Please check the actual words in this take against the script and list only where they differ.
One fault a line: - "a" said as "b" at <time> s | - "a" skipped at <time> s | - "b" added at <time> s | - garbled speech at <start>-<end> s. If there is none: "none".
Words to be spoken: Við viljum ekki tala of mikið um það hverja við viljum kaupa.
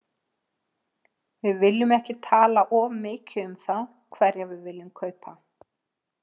none